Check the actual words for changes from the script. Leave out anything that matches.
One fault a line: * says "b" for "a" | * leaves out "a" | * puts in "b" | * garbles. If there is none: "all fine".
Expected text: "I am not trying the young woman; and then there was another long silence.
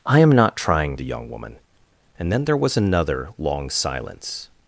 all fine